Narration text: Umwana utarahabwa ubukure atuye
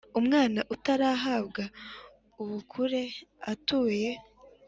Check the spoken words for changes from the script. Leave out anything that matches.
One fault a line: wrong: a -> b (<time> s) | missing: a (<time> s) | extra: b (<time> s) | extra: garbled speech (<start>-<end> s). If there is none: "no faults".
no faults